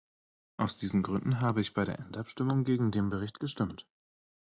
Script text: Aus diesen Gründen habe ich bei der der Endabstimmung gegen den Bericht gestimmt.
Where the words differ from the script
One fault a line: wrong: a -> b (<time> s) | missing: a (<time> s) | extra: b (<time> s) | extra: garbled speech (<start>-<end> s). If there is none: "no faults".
missing: der (2.0 s)